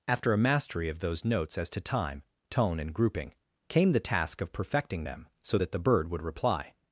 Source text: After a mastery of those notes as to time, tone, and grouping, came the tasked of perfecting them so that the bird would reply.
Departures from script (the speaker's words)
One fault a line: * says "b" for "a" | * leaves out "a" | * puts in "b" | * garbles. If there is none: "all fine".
* says "task" for "tasked"